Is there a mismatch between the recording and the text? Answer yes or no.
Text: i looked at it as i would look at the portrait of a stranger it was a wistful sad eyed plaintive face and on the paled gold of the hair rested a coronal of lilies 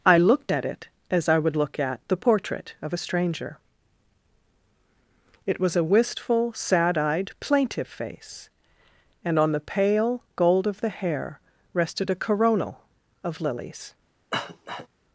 yes